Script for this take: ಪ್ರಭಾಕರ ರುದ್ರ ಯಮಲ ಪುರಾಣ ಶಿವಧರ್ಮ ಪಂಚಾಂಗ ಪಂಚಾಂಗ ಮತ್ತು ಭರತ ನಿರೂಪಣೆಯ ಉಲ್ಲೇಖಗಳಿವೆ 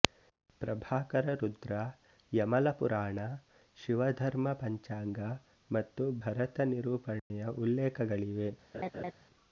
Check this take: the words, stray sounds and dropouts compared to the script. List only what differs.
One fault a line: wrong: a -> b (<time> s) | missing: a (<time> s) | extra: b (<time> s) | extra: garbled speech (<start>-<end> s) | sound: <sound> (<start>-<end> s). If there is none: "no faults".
missing: ಪಂಚಾಂಗ (5.2 s)
sound: dropout (7.2-7.3 s)
sound: laugh (8.7-9.1 s)